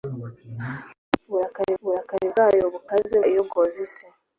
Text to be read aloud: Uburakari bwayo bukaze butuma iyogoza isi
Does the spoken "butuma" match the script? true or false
false